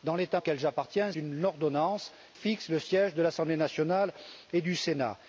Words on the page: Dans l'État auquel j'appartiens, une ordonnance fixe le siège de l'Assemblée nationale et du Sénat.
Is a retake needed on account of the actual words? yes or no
no